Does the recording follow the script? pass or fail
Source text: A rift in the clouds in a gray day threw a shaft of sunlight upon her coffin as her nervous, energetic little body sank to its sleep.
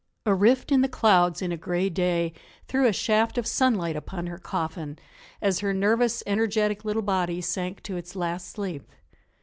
fail